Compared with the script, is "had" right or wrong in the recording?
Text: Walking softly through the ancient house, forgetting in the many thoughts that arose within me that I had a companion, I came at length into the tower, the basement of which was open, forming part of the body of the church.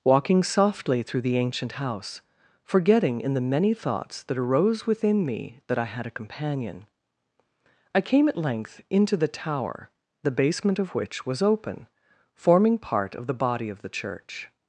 right